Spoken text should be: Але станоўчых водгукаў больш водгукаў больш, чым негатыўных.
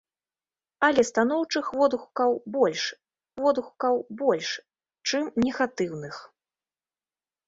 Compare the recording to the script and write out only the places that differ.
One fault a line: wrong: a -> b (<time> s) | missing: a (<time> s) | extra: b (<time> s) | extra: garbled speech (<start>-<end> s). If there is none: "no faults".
no faults